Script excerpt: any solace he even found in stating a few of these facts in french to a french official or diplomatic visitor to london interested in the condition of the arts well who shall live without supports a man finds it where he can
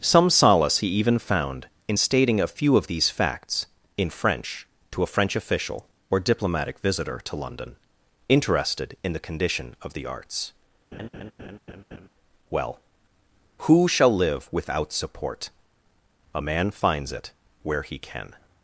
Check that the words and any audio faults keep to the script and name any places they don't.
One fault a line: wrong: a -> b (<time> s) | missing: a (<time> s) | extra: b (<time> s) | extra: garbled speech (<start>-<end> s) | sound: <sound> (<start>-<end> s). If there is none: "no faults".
wrong: any -> some (0.0 s)
sound: laugh (10.9-12.1 s)
wrong: supports -> support (14.9 s)